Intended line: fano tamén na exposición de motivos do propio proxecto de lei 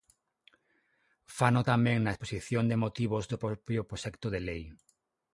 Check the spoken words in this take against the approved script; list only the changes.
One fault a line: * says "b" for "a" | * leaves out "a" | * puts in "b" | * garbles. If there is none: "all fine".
all fine